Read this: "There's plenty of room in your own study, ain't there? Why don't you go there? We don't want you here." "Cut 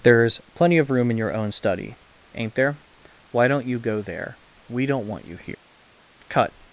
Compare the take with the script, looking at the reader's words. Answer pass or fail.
pass